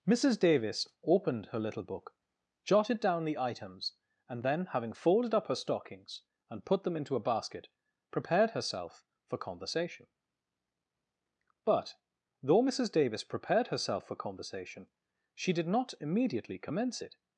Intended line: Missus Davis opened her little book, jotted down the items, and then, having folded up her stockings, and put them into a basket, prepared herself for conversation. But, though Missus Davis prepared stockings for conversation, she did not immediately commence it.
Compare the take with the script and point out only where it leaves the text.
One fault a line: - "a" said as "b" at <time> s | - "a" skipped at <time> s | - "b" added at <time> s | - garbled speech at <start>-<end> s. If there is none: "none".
- "stockings" said as "herself" at 13.7 s